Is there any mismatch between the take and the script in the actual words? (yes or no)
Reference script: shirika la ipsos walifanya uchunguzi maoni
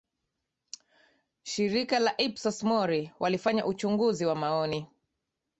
yes